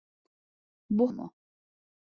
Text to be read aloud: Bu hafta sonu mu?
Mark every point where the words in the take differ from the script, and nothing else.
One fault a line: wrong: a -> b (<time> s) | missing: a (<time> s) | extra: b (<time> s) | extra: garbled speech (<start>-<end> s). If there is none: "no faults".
missing: hafta sonu (1.1 s)